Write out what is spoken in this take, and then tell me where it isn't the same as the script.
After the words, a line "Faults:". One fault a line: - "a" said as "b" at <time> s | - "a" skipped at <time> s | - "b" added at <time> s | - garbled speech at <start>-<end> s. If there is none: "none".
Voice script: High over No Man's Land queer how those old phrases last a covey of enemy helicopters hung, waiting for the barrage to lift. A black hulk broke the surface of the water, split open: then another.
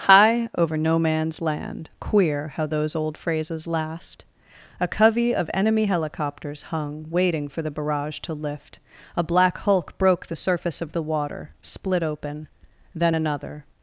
High over No Man's Land queer how those old phrases last a covey of enemy helicopters hung, waiting for the barrage to lift. A black hulk broke the surface of the water, split open: then another.
Faults:
none